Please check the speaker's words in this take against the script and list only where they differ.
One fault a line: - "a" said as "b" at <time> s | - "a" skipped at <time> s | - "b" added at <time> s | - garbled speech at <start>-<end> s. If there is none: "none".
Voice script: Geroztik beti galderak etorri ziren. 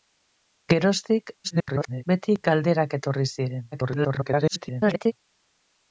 - garbled speech at 1.4-2.0 s
- garbled speech at 3.7-5.1 s